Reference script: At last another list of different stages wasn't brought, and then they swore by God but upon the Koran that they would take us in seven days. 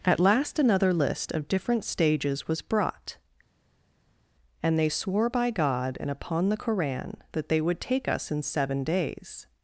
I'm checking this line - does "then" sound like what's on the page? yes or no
no